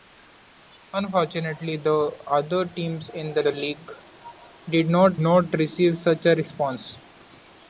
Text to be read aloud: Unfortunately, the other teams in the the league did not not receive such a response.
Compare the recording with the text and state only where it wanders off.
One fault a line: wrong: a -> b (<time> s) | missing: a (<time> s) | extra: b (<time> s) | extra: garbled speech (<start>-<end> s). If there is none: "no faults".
no faults